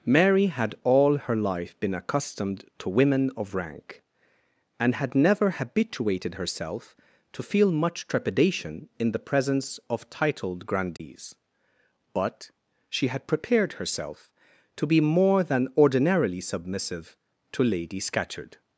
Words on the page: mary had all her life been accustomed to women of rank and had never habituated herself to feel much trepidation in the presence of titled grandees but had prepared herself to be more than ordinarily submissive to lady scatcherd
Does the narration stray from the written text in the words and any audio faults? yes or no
yes